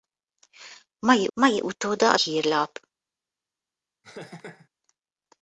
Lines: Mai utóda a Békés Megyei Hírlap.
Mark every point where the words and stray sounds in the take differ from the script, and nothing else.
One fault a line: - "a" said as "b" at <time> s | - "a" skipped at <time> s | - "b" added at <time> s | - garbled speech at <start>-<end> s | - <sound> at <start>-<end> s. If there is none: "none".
- "mai" added at 1.3 s
- "Békés Megyei" skipped at 2.2 s
- laugh at 4.0-4.7 s